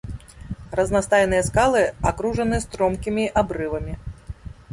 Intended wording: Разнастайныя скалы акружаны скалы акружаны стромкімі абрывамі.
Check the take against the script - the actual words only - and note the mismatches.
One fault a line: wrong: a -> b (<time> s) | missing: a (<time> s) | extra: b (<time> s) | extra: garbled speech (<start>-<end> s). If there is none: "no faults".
missing: скалы акружаны (2.6 s)